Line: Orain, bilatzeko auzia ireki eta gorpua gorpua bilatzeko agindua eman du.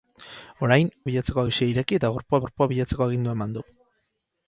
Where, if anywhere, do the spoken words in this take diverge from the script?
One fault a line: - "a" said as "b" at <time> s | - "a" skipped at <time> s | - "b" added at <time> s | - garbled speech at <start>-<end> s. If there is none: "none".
none